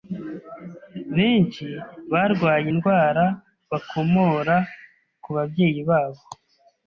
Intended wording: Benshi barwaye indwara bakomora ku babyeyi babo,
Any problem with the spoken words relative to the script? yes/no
no